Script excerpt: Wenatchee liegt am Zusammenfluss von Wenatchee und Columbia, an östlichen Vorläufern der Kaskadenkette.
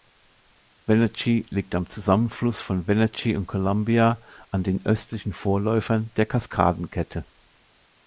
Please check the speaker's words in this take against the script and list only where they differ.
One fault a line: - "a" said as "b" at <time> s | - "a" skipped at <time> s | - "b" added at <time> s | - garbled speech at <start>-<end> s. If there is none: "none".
- "den" added at 4.6 s